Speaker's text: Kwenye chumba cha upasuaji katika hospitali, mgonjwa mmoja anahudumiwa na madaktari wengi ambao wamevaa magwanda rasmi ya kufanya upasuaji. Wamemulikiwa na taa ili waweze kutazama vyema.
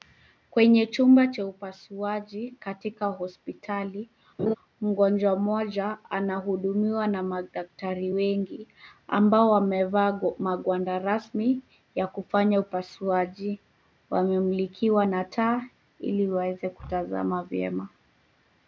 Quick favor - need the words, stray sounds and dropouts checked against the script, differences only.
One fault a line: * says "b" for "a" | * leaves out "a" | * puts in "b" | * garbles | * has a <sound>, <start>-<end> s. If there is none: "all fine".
* has a laugh, 4.4-4.5 s